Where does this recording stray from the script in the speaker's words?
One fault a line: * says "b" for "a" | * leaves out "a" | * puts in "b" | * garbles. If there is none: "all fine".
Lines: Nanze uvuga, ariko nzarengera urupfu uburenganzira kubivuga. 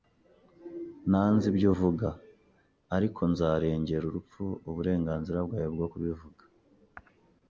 * puts in "ibyo"
* puts in "bwawe bwo"